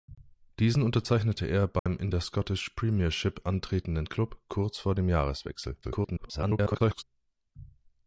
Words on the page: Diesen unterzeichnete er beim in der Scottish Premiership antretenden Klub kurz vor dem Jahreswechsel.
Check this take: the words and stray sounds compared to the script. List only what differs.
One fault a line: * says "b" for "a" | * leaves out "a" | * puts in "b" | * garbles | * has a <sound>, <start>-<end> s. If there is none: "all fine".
* has a dropout, 1.8-1.9 s
* garbles